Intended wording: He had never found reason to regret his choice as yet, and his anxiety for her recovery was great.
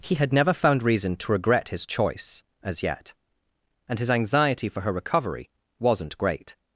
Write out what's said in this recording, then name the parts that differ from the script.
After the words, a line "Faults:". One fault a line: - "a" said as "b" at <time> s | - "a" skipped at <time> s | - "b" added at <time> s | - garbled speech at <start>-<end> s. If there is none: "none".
He had never found reason to regret his choice as yet, and his anxiety for her recovery wasn't great.
Faults:
- "was" said as "wasn't" at 5.8 s